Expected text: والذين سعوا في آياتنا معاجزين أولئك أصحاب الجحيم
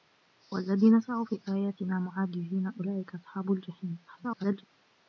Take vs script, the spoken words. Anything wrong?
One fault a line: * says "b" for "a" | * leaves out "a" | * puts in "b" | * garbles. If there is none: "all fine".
* garbles